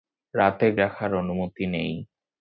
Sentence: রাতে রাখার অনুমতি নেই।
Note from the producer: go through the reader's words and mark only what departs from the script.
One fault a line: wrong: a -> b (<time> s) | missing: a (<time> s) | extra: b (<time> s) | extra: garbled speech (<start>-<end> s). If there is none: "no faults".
no faults